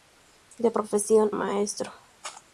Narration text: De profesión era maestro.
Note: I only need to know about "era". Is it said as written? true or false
false